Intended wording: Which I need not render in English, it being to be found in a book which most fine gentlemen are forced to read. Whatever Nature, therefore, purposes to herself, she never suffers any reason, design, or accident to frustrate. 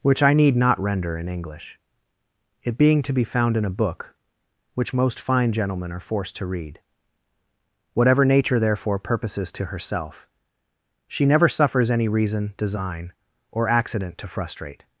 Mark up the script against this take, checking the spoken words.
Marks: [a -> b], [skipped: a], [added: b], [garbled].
Which I need not render in English, it being to be found in a book which most fine gentlemen are forced to read. Whatever Nature, therefore, purposes to herself, she never suffers any reason, design, or accident to frustrate.